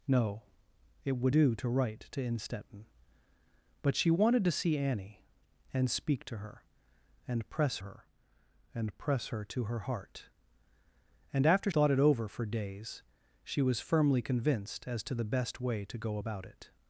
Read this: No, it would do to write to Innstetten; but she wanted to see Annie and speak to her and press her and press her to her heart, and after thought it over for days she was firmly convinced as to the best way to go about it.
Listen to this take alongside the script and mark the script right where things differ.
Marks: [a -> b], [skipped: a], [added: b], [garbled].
No, it would do to write to Innstetten; but she wanted to see Annie and speak to her and press her and press her to her heart, and after thought it over for days she was firmly convinced as to the best way to go about it.